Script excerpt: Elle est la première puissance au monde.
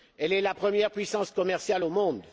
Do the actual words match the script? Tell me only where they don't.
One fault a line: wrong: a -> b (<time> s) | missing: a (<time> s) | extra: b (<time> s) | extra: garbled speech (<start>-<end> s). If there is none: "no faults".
extra: commerciale (1.3 s)